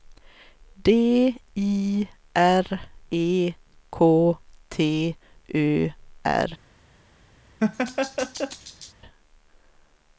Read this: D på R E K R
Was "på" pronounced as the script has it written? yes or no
no